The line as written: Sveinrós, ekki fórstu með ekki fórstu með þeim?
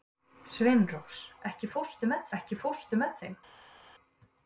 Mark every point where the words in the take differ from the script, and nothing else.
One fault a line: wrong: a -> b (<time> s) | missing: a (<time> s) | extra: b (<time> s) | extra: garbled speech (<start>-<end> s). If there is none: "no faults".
no faults